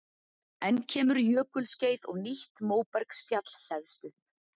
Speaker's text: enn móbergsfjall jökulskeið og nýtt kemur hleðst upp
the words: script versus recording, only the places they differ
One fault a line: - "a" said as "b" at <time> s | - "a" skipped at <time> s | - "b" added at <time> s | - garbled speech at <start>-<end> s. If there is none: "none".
- "móbergsfjall" said as "kemur" at 0.9 s
- "kemur" said as "móbergsfjall" at 2.7 s